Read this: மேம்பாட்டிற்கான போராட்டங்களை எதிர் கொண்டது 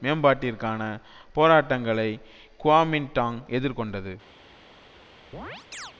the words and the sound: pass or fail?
fail